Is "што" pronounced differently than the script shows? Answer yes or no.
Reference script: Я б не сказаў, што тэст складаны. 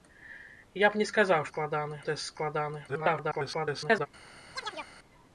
yes